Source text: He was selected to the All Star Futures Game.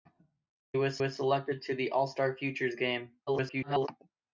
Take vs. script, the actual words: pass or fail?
fail